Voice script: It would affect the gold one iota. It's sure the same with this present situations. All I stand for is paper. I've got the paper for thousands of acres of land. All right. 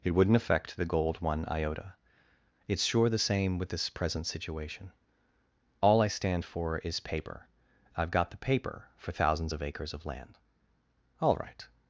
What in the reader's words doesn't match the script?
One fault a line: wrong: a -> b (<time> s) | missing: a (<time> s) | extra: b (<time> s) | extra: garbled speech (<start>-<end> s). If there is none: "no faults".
wrong: would -> wouldn't (0.1 s)
wrong: situations -> situation (4.3 s)